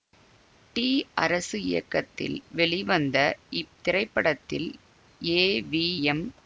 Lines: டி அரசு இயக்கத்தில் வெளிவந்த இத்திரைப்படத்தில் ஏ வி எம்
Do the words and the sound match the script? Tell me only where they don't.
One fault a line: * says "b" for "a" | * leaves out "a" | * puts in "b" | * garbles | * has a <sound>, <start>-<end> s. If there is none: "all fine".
all fine